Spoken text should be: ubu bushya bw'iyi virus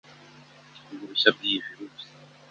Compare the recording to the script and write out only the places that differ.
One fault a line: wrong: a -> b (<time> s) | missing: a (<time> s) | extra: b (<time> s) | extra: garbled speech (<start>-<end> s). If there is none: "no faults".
no faults